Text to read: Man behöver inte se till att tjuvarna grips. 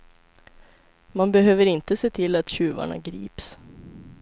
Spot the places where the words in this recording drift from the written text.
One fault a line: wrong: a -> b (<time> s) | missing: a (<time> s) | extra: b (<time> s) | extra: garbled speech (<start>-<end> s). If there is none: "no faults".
no faults